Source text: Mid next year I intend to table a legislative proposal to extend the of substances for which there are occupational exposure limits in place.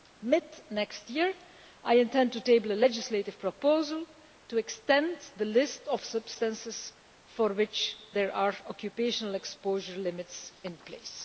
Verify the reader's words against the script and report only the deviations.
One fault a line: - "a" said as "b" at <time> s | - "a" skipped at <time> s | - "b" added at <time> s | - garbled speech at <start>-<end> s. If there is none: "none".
- "list" added at 5.4 s